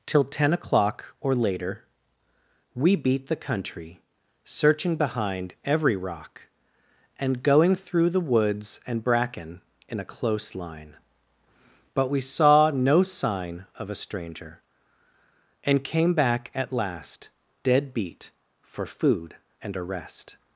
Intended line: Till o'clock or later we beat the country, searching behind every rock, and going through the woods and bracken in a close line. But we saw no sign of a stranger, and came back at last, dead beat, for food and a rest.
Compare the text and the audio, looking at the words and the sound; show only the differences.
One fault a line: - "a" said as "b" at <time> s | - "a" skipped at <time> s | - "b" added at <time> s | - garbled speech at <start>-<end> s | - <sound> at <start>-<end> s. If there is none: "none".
- "ten" added at 0.2 s